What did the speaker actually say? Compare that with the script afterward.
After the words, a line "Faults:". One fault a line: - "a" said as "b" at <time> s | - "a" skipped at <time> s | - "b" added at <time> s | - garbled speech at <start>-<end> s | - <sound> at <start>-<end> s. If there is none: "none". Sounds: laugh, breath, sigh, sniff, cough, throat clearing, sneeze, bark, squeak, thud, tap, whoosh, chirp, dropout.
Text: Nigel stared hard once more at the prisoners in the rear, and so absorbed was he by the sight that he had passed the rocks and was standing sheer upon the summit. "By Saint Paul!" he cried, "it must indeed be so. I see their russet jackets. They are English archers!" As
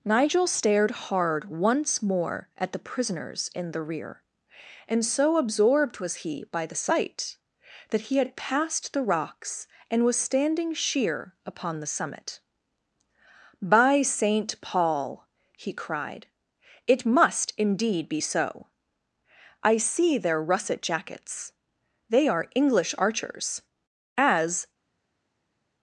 Nigel stared hard once more at the prisoners in the rear, and so absorbed was he by the sight that he had passed the rocks and was standing sheer upon the summit. "By Saint Paul!" he cried, "it must indeed be so. I see their russet jackets. They are English archers!" As
Faults:
none